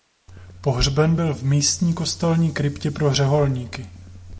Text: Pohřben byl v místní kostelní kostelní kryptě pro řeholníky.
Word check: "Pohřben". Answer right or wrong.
right